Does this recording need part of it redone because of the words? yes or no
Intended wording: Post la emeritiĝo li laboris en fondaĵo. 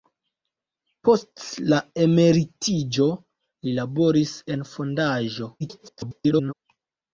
yes